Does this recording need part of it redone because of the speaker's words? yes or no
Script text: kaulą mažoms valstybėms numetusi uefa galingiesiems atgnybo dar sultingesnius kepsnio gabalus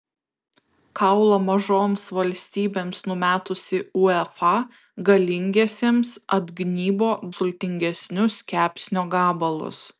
yes